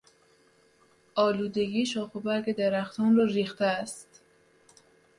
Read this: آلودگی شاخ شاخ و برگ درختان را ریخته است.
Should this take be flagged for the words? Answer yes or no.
yes